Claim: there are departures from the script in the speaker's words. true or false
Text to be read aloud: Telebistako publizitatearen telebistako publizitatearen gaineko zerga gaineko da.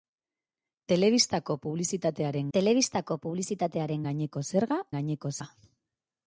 false